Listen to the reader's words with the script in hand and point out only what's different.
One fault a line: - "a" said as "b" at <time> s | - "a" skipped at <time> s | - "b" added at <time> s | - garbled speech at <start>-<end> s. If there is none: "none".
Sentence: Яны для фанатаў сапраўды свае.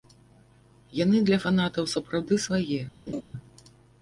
none